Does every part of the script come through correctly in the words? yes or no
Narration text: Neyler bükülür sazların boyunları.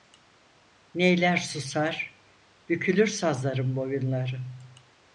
no